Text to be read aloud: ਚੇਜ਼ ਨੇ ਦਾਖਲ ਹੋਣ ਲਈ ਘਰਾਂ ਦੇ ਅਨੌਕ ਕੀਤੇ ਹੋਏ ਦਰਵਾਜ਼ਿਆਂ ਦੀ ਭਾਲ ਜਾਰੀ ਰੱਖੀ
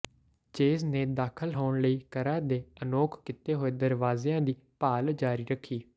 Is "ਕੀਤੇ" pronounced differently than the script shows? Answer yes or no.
no